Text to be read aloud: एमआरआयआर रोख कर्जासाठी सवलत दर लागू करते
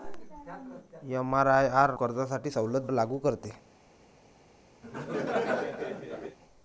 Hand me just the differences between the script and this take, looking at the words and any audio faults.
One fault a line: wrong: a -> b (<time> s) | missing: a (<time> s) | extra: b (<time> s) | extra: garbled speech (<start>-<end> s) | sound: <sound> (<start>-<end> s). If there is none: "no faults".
missing: रोख (1.9 s)
missing: दर (2.9 s)
sound: laugh (4.8-6.4 s)